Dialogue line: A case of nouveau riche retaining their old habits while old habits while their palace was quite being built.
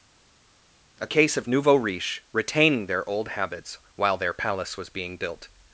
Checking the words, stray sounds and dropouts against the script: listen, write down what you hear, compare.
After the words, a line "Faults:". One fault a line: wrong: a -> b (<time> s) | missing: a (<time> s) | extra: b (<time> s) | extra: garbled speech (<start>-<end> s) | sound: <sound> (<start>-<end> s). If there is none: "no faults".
A case of nouveau riche retaining their old habits while their palace was being built.
Faults:
missing: old habits while (4.2 s)
missing: quite (4.9 s)